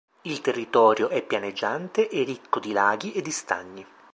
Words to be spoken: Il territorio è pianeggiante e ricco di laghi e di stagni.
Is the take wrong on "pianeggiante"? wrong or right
right